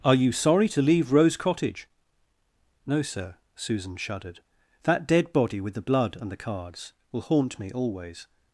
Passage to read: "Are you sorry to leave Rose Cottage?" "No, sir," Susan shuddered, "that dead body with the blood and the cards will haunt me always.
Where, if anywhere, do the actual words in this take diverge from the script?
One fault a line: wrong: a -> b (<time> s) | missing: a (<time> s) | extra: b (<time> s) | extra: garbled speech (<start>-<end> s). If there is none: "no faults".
no faults